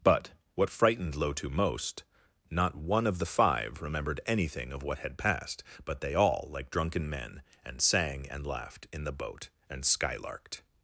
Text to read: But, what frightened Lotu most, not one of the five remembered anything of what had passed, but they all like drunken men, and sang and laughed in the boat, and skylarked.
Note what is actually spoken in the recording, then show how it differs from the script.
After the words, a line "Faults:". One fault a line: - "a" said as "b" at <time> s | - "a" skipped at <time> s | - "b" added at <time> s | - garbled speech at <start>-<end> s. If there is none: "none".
But, what frightened Lotu most, not one of the five remembered anything of what had passed, but they all like drunken men, and sang and laughed in the boat, and skylarked.
Faults:
none